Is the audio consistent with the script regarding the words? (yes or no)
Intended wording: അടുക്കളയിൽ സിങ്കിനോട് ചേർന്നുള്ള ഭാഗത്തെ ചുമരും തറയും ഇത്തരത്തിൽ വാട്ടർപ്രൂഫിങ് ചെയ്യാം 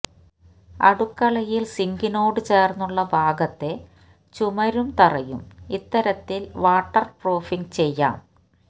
yes